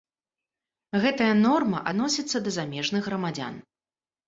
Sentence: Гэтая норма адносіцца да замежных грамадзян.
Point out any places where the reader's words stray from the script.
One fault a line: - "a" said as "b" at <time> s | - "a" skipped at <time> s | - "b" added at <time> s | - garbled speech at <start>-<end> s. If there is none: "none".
none